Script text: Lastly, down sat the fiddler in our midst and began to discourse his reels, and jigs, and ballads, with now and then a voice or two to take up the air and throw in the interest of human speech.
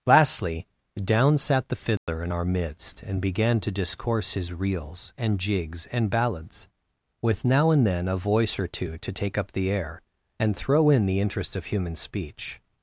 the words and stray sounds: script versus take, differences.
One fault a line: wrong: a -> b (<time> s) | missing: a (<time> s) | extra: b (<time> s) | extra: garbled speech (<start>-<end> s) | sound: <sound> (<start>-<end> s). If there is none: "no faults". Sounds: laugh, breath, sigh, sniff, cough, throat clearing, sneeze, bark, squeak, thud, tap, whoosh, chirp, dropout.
sound: dropout (2.0-2.1 s)